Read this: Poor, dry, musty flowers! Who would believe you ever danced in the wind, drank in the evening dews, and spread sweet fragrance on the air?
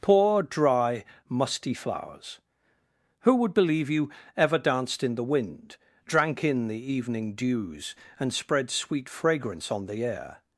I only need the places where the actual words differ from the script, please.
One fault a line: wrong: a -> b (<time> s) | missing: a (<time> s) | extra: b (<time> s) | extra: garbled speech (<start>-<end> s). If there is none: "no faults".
no faults